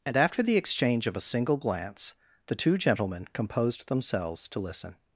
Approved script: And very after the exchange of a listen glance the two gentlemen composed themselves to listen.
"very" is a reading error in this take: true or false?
true